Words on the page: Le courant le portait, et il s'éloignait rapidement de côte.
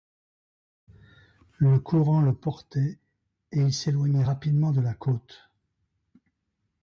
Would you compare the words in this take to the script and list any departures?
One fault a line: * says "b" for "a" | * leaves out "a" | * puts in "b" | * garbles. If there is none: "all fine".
* puts in "la"